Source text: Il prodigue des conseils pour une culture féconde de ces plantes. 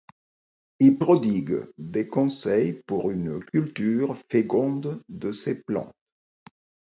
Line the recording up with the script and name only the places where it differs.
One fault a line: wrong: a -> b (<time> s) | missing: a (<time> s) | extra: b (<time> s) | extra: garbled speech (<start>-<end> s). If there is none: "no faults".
no faults